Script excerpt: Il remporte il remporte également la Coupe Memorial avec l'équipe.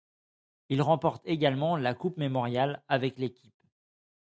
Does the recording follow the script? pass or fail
fail